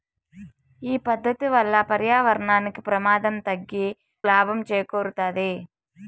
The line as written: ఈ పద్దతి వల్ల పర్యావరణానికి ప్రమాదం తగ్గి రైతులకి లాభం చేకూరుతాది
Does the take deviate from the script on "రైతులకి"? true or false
true